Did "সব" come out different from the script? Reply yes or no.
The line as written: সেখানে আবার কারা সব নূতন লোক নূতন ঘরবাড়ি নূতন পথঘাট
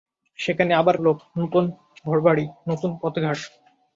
yes